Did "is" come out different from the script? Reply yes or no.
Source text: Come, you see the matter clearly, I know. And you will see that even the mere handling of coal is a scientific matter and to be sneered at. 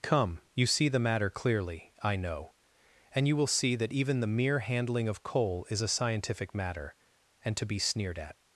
no